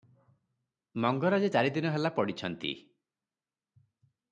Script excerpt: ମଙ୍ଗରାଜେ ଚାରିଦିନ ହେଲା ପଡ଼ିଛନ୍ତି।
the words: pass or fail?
pass